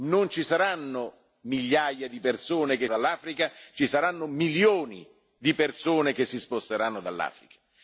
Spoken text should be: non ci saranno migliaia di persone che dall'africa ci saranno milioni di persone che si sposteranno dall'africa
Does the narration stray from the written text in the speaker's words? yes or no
no